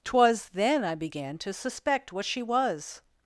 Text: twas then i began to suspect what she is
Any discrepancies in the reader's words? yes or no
yes